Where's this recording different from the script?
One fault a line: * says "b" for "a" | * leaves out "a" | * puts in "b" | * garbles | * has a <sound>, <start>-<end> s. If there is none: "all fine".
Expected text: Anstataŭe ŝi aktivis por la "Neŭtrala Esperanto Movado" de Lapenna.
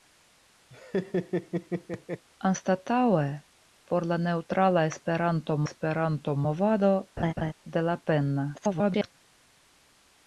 * has a laugh, 0.7-2.2 s
* leaves out "ŝi aktivis"
* puts in "Esperanto"
* has a laugh, 7.2-7.5 s
* garbles